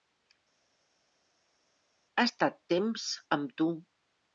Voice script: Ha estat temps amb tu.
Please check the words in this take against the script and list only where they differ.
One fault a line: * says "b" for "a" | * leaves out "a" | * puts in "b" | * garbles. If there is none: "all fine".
all fine